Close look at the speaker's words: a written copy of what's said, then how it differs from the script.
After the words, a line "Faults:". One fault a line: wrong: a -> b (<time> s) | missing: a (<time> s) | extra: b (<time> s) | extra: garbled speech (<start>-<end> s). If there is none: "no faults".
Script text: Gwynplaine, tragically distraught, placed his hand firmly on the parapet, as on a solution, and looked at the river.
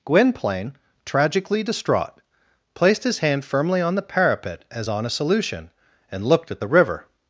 Gwynplaine, tragically distraught, placed his hand firmly on the parapet, as on a solution, and looked at the river.
Faults:
no faults